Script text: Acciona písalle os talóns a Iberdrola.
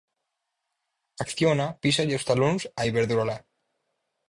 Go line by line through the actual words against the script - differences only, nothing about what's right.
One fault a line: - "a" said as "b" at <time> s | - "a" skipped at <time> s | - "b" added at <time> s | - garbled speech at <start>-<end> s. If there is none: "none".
none